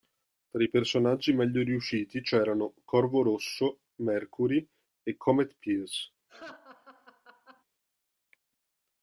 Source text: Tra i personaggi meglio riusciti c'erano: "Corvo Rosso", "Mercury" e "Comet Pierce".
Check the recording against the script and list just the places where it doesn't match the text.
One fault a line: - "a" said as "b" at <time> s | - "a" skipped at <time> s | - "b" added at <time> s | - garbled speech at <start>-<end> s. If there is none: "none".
none